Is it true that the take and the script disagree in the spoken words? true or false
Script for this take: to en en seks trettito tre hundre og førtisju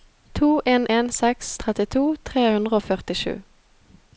false